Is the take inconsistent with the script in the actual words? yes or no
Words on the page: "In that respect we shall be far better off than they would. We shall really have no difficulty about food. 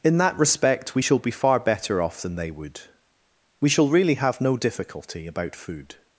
no